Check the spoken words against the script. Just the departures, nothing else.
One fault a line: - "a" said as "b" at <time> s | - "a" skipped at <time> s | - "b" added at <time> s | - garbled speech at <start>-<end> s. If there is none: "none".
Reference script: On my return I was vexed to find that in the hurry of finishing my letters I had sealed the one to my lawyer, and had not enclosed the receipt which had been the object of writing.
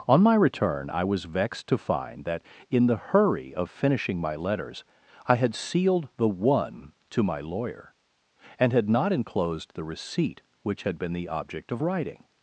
none